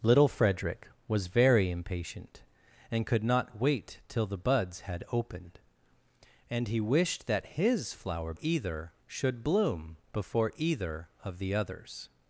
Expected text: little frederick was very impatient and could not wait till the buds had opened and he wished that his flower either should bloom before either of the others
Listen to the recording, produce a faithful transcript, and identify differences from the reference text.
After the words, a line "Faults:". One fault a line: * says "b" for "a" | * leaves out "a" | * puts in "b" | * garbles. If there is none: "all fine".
little frederick was very impatient and could not wait till the buds had opened and he wished that his flower either should bloom before either of the others
Faults:
all fine